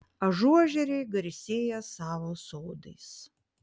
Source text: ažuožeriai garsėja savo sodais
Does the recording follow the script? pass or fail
pass